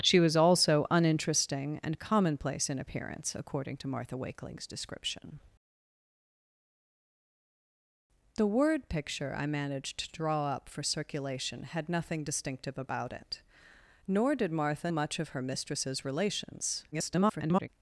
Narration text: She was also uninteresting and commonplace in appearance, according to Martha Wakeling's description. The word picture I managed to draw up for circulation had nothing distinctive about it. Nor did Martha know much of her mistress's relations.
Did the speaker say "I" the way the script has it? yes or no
yes